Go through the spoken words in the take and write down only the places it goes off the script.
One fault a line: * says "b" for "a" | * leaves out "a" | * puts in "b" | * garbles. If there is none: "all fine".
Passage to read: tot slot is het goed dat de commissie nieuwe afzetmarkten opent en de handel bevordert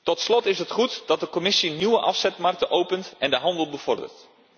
all fine